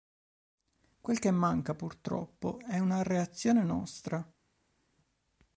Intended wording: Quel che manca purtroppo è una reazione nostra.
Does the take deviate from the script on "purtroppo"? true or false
false